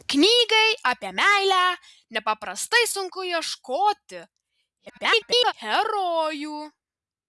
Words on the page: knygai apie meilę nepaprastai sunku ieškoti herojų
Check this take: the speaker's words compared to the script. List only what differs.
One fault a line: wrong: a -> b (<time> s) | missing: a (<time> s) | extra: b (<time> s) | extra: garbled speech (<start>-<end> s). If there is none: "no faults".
extra: garbled speech (4.9-5.5 s)